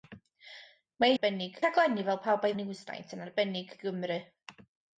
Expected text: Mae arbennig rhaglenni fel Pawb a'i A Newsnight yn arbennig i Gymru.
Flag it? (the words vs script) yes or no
no